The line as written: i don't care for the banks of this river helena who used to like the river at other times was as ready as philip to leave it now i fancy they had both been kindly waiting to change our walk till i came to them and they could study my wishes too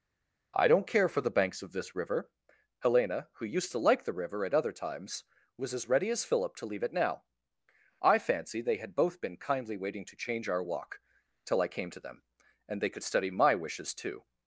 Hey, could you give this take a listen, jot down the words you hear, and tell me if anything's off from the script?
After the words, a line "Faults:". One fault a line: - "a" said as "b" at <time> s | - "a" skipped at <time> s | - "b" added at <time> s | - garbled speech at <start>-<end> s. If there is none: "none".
i don't care for the banks of this river helena who used to like the river at other times was as ready as philip to leave it now i fancy they had both been kindly waiting to change our walk till i came to them and they could study my wishes too
Faults:
none